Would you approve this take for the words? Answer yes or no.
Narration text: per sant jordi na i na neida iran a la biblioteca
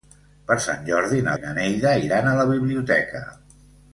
yes